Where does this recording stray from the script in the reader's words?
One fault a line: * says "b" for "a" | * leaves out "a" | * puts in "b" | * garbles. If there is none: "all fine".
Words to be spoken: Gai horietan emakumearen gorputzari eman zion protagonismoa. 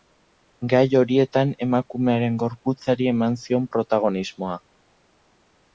all fine